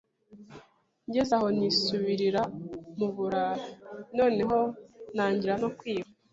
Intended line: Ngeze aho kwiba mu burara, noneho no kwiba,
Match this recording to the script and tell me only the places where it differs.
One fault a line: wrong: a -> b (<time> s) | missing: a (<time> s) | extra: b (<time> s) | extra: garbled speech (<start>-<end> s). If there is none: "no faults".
wrong: kwiba -> nisubirira (1.6 s)
extra: ntangira (5.1 s)